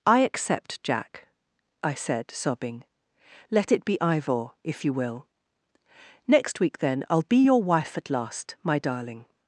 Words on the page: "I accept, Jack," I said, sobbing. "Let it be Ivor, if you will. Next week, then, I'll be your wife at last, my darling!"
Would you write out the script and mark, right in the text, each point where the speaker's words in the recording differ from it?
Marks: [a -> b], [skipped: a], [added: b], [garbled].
"I accept, Jack," I said, sobbing. "Let it be Ivor, if you will. Next week, then, I'll be your wife at last, my darling!"